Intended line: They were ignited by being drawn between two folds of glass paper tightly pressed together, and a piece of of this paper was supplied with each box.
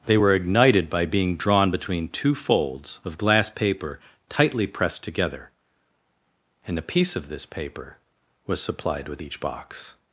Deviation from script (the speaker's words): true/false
true